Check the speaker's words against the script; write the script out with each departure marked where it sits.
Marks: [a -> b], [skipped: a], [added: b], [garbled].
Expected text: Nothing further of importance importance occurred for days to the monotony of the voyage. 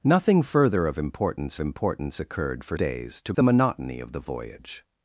Nothing further of importance importance occurred for days to the monotony of the voyage.